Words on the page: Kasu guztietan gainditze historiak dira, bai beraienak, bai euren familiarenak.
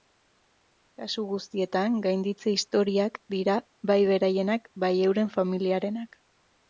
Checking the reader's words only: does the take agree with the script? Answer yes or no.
yes